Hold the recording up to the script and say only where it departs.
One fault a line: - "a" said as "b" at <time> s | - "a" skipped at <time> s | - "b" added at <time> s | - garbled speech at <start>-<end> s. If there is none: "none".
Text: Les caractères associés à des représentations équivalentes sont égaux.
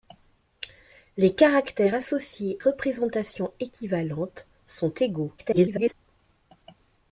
- "à des" skipped at 2.6 s
- garbled speech at 5.4-5.9 s